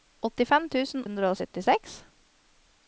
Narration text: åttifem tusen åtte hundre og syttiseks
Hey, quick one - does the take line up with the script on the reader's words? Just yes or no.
no